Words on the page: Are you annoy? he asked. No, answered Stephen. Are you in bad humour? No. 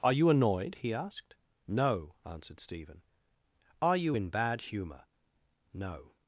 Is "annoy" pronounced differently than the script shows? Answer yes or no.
yes